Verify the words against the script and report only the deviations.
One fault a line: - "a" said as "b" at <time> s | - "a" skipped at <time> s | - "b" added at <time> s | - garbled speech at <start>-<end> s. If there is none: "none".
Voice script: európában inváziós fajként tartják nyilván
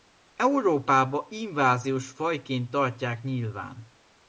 none